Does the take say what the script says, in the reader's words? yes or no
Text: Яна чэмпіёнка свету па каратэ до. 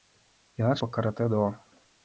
no